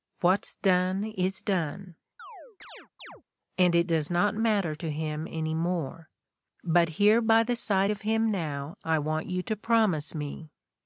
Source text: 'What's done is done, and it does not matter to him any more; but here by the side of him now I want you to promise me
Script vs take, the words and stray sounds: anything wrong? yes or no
yes